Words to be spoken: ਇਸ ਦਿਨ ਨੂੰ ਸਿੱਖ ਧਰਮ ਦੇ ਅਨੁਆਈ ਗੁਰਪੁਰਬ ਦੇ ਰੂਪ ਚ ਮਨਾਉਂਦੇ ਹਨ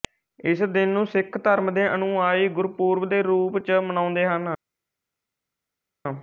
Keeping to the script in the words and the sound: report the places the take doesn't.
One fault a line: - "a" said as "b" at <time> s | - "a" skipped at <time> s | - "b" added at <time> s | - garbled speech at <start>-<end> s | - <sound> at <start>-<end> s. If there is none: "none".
none